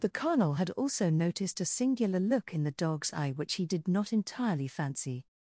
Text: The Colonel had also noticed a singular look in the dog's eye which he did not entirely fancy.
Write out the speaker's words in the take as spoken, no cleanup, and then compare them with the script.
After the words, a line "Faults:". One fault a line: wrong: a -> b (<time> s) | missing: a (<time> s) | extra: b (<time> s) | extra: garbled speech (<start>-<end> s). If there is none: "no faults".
The Colonel had also noticed a singular look in the dog's eye which he did not entirely fancy.
Faults:
no faults